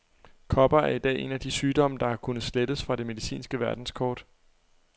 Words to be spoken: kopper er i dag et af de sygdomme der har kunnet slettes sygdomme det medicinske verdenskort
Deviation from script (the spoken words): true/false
true